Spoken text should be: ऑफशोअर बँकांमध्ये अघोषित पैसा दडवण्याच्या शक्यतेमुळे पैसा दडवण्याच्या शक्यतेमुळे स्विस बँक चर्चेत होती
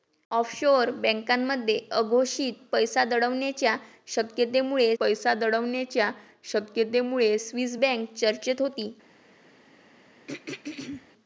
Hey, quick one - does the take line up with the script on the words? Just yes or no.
yes